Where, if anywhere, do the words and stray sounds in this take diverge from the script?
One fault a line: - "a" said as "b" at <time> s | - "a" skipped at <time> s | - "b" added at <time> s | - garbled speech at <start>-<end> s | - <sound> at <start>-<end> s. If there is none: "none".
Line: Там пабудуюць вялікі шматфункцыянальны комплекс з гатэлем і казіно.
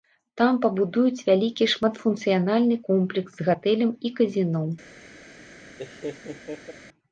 - laugh at 5.8-6.7 s